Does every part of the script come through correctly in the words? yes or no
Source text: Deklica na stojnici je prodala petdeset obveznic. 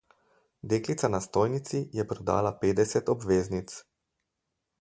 yes